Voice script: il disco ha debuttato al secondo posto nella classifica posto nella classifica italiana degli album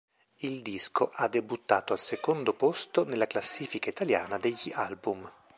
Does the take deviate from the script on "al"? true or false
false